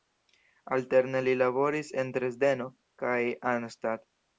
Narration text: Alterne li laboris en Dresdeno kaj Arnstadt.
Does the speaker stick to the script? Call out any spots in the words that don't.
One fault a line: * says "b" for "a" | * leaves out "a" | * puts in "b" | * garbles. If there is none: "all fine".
all fine